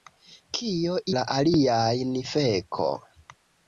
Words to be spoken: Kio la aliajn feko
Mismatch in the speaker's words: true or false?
false